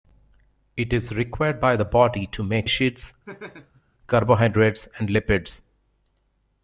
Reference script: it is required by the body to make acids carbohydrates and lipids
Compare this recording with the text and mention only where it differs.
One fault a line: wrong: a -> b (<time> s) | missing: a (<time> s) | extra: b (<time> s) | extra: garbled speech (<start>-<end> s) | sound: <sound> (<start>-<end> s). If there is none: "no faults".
sound: laugh (3.3-3.8 s)